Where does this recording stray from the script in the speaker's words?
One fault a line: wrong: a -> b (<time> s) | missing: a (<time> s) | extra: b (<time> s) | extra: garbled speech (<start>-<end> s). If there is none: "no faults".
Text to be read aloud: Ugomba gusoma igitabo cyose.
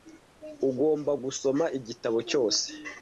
no faults